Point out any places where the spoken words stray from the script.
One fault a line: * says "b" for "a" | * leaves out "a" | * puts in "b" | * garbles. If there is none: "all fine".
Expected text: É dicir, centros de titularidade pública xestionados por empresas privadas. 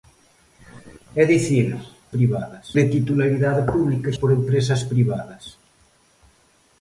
* says "privadas" for "centros"
* leaves out "xestionados"